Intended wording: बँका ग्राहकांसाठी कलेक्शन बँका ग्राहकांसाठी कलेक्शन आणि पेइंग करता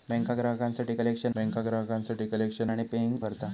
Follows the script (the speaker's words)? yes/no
yes